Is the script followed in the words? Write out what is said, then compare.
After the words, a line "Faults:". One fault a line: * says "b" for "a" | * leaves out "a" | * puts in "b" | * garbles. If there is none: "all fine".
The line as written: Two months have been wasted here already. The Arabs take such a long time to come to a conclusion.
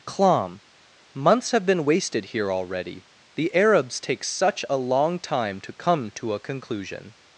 Clom months have been wasted here already. The Arabs take such a long time to come to a conclusion.
Faults:
* says "Clom" for "Two"